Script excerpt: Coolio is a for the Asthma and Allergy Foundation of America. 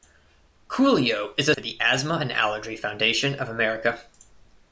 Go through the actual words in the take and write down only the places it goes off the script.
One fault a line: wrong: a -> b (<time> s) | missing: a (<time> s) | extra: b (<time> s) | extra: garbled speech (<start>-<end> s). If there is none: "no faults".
no faults